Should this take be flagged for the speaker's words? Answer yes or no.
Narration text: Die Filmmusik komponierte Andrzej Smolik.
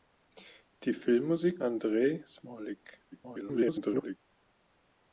yes